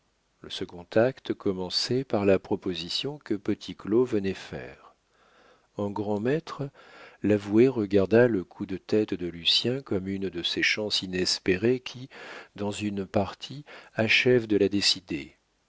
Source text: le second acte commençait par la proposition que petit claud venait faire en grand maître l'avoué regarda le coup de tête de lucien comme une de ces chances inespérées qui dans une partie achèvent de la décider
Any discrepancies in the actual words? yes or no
no